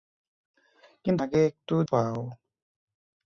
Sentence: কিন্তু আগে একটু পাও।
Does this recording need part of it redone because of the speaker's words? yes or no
no